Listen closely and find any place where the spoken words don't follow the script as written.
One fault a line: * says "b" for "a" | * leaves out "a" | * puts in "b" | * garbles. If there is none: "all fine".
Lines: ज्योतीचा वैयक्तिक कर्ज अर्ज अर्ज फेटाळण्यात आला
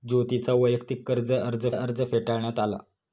all fine